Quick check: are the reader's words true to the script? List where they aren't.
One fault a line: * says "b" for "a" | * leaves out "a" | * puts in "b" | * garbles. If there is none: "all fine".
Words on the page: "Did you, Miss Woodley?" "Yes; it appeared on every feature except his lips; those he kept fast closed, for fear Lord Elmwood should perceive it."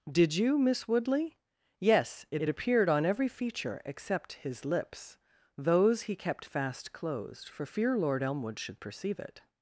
* puts in "it"